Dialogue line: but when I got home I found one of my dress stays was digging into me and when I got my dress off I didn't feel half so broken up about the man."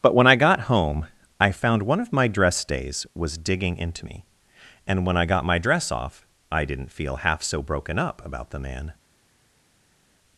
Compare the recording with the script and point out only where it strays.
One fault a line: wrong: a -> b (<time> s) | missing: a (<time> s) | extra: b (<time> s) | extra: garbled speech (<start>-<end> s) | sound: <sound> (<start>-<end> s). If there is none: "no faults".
no faults